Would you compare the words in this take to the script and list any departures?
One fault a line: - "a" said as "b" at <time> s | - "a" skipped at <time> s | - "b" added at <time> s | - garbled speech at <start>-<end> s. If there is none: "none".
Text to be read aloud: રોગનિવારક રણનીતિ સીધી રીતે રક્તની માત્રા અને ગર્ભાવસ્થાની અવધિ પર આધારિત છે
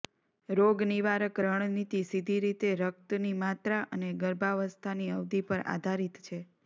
none